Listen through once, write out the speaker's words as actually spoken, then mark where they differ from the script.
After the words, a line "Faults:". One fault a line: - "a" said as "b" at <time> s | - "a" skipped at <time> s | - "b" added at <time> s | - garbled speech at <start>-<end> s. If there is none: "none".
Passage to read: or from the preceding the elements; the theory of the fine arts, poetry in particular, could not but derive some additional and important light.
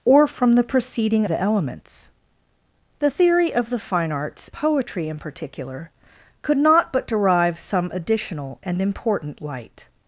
or from the preceding the elements; the theory of the fine arts, poetry in particular, could not but derive some additional and important light.
Faults:
none